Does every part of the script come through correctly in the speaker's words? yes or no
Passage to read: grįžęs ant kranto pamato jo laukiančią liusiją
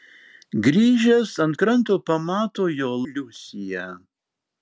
no